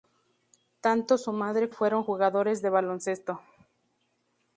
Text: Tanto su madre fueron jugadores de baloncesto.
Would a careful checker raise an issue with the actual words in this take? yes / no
no